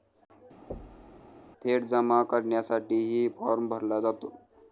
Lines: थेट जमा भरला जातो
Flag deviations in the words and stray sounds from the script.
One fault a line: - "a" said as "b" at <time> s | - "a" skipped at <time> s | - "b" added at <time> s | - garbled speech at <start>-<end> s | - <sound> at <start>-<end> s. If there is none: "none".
- thud at 0.7-1.2 s
- "करण्यासाठीही फॉर्म" added at 2.3 s